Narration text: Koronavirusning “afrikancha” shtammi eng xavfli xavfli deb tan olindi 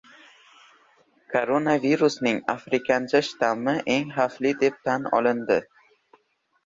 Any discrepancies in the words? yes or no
yes